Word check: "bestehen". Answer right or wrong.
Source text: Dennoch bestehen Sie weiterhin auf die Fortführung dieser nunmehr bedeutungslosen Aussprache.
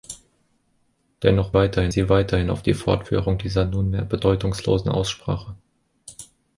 wrong